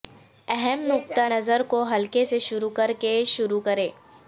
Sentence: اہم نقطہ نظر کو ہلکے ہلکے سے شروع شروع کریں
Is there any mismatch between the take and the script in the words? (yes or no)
yes